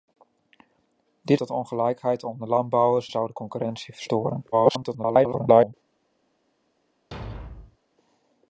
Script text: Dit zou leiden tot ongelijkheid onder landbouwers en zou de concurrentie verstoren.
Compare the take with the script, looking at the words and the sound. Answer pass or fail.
fail